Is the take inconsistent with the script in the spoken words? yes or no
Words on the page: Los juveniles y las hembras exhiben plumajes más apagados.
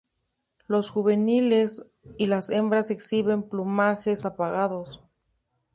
yes